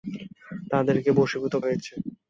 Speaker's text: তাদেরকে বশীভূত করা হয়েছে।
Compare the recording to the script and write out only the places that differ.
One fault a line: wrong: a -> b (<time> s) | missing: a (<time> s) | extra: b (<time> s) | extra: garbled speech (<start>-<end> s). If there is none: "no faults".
missing: করা (1.5 s)